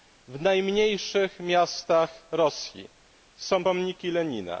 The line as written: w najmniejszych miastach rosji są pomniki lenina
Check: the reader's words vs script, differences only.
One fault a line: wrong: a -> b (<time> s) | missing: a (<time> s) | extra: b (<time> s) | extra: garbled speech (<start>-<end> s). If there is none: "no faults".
no faults